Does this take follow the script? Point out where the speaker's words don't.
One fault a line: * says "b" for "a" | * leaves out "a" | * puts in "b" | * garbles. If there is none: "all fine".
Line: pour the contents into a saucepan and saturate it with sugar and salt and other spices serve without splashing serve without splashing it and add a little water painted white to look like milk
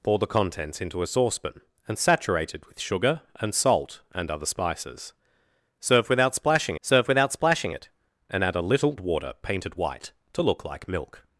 all fine